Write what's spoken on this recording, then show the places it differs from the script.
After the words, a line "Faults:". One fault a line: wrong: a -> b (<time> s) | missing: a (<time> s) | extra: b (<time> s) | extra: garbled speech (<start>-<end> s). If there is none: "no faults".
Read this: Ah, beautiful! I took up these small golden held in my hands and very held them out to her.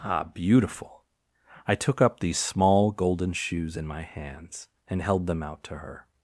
Ah, beautiful! I took up these small golden shoes in my hands and held them out to her.
Faults:
wrong: held -> shoes (3.3 s)
missing: very (5.0 s)